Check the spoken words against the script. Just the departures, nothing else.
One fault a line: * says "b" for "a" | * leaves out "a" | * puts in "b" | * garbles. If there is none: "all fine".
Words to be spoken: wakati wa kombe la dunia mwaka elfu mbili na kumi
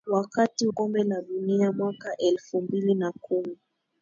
* leaves out "wa"